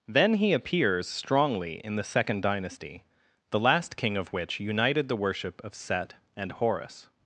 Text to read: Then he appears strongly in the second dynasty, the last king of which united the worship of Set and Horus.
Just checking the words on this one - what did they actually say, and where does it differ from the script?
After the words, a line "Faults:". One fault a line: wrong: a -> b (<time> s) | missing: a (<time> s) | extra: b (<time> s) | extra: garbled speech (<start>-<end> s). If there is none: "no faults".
Then he appears strongly in the second dynasty, the last king of which united the worship of Set and Horus.
Faults:
no faults